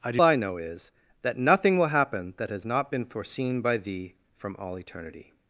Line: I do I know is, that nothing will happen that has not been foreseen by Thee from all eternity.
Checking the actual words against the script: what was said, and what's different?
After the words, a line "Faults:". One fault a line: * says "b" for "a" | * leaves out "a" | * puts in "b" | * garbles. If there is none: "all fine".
I do I know is, that nothing will happen that has not been foreseen by Thee from all eternity.
Faults:
all fine